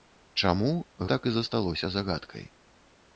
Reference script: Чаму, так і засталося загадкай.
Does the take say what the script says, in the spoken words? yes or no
yes